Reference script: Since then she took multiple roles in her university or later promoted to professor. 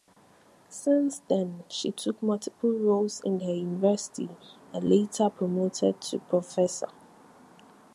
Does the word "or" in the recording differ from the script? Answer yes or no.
yes